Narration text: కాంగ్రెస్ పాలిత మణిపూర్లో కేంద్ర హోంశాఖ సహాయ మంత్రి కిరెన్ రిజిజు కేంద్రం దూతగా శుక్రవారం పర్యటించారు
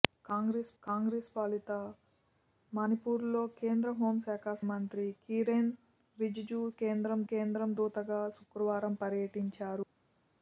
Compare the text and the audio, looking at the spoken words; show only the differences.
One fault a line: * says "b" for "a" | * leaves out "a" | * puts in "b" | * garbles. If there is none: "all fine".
* puts in "కాంగ్రెస్"
* leaves out "సహాయ"
* puts in "కేంద్రం"